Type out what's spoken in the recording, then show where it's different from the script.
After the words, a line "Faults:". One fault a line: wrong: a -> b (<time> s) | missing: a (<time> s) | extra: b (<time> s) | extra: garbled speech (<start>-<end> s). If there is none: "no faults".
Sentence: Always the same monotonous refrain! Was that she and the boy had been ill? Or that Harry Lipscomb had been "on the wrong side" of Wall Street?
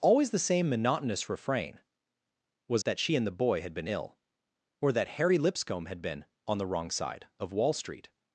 Always the same monotonous refrain! Was that she and the boy had been ill? Or that Harry Lipscomb had been "on the wrong side" of Wall Street?
Faults:
no faults